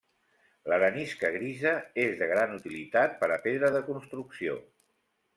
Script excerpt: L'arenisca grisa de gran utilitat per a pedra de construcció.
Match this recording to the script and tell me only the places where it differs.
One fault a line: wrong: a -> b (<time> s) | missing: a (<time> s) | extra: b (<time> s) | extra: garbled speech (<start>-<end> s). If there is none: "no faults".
extra: és (2.0 s)